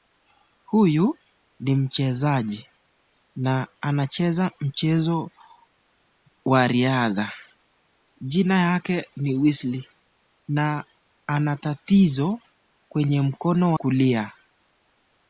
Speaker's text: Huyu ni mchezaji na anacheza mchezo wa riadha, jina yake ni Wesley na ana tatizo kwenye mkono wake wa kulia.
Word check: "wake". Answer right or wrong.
wrong